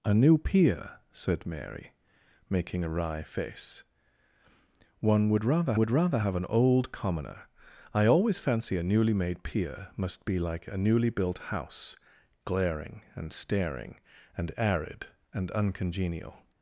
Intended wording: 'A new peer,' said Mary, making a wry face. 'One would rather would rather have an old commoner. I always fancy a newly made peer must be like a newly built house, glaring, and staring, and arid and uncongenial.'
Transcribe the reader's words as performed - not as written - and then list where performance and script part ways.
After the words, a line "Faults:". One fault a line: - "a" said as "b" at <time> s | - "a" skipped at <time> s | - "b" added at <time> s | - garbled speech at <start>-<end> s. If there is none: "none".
'A new peer,' said Mary, making a wry face. 'One would rather would rather have an old commoner. I always fancy a newly made peer must be like a newly built house, glaring, and staring, and arid and uncongenial.'
Faults:
none